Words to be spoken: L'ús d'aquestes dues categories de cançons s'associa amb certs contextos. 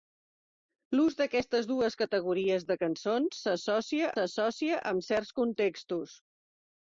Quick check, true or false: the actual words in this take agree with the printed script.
false